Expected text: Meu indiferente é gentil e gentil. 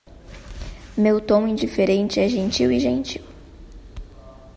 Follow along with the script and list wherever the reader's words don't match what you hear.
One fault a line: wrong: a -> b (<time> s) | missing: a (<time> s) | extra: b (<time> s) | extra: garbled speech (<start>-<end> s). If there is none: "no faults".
extra: tom (1.2 s)